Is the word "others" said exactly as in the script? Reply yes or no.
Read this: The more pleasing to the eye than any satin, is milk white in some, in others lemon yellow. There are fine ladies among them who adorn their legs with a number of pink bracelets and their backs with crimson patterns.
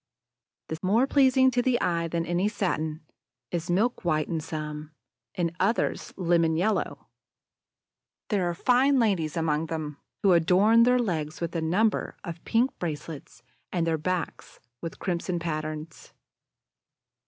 yes